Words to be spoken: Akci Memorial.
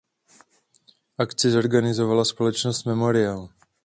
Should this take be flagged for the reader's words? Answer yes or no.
yes